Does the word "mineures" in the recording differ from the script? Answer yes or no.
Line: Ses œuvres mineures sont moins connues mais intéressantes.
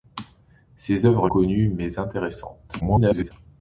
yes